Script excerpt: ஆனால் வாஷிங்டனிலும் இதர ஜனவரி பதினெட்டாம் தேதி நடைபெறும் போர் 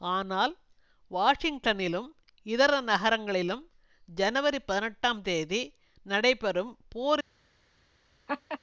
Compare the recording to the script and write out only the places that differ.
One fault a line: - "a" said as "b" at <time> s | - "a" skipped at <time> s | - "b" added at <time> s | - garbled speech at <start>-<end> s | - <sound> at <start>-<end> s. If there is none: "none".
- "நகரங்களிலும்" added at 2.8 s
- laugh at 8.3-8.6 s